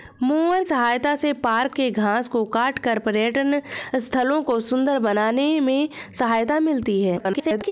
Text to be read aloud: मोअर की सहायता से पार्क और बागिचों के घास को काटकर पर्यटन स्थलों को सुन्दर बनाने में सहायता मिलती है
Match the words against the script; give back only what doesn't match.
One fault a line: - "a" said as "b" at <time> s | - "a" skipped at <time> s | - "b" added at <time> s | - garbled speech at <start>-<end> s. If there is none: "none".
- "की" skipped at 0.6 s
- "और बागिचों" skipped at 1.8 s
- garbled speech at 7.2-7.7 s